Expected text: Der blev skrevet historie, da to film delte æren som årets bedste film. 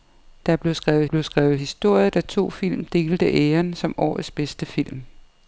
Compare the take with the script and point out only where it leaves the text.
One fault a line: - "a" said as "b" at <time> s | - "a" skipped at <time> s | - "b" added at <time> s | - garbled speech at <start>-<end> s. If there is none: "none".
- "blev skrevet" added at 1.0 s